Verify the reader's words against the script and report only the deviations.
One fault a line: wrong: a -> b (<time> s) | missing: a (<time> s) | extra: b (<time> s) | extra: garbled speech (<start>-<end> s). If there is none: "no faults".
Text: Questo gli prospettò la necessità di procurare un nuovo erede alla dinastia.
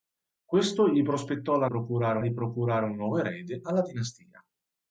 wrong: necessità -> procurare (1.6 s)